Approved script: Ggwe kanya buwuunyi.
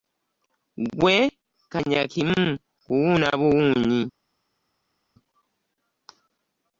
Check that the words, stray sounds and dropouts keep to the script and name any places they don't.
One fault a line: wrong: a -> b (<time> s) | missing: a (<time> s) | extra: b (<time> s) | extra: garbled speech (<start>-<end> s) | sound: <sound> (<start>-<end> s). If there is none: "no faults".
extra: kimu kuwuuna (2.1 s)